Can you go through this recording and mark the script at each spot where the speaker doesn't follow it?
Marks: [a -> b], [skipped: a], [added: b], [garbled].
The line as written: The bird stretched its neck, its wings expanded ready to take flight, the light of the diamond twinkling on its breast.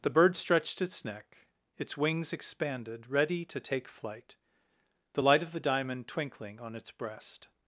The bird stretched its neck, its wings expanded ready to take flight, the light of the diamond twinkling on its breast.